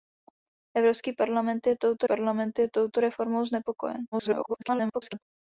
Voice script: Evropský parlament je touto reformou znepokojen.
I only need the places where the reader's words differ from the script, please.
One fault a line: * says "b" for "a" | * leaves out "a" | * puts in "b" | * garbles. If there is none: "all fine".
* puts in "parlament je touto"
* garbles